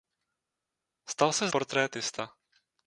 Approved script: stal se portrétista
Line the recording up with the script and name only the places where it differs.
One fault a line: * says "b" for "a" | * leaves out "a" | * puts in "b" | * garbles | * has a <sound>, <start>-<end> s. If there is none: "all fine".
all fine